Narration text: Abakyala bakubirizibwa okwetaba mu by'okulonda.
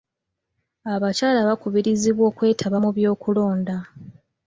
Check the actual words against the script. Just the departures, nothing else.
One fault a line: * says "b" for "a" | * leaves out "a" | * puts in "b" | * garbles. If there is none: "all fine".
all fine